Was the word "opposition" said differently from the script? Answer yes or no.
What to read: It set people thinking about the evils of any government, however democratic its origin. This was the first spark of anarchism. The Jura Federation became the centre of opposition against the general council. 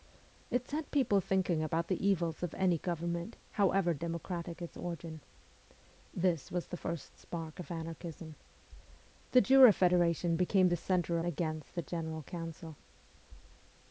yes